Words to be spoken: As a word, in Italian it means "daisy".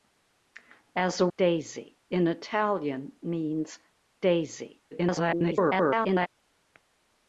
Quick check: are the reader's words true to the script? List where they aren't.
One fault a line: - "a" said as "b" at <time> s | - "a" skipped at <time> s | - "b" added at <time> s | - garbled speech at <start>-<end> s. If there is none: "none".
- "word" said as "daisy" at 1.4 s
- "it" skipped at 3.2 s
- garbled speech at 4.9-6.3 s